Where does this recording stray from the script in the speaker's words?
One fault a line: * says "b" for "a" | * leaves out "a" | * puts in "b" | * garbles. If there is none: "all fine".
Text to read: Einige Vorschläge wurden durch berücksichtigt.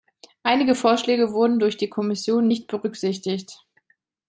* puts in "die Kommission nicht"